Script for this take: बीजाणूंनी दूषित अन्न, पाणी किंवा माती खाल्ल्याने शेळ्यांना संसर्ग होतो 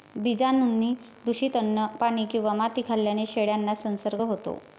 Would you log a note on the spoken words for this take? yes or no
no